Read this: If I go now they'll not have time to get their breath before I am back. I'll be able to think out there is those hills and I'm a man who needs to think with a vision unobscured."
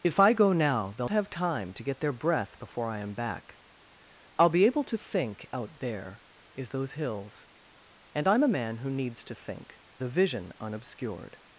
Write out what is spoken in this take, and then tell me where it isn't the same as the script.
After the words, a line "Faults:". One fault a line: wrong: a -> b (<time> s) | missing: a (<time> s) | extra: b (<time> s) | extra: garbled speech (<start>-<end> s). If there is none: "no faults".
If I go now they'll have time to get their breath before I am back. I'll be able to think out there is those hills and I'm a man who needs to think a vision unobscured."
Faults:
missing: not (1.1 s)
missing: with (9.8 s)